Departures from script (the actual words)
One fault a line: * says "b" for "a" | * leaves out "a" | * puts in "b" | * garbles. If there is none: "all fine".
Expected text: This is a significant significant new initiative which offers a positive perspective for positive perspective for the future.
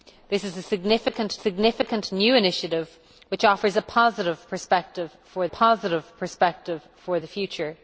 all fine